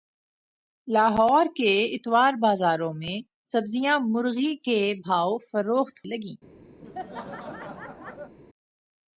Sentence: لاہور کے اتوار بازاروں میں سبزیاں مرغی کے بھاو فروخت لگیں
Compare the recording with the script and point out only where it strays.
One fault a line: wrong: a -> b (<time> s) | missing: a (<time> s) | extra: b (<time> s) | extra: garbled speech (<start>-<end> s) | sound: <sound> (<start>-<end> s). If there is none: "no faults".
sound: laugh (6.8-8.3 s)